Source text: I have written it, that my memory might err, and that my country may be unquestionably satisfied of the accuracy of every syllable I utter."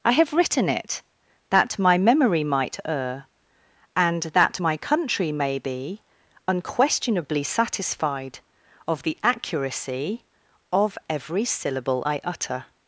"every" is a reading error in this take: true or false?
false